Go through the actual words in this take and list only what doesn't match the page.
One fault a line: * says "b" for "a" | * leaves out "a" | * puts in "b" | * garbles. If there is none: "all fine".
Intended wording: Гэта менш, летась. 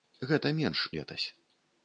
all fine